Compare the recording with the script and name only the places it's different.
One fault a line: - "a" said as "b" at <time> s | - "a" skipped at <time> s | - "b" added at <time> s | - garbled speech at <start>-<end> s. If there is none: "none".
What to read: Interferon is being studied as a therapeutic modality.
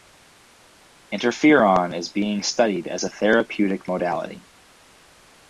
none